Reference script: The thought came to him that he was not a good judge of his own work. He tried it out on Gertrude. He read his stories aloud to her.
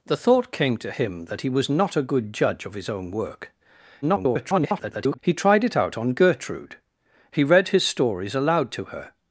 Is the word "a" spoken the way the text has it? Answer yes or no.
yes